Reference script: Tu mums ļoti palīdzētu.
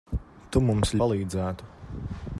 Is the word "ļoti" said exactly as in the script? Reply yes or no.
no